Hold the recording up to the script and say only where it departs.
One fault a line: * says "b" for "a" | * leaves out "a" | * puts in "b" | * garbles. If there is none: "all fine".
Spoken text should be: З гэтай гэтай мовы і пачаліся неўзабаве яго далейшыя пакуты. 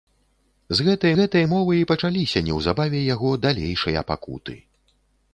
all fine